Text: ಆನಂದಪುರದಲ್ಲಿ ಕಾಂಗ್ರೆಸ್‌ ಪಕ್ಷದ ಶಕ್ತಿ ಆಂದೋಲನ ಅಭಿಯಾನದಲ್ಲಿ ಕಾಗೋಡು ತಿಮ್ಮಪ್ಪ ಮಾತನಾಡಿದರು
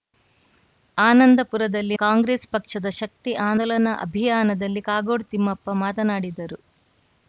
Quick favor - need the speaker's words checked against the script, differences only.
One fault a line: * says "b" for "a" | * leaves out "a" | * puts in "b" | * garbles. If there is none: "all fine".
all fine